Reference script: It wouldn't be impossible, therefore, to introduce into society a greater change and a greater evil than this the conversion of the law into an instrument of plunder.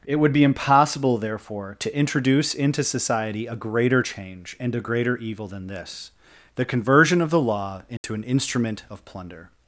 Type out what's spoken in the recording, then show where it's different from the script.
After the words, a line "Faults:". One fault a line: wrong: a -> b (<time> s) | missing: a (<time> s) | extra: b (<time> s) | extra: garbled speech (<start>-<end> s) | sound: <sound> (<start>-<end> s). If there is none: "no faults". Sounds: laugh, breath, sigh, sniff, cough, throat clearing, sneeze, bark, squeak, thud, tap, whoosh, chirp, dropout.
It would be impossible, therefore, to introduce into society a greater change and a greater evil than this the conversion of the law into an instrument of plunder.
Faults:
wrong: wouldn't -> would (0.1 s)
sound: dropout (8.0-8.0 s)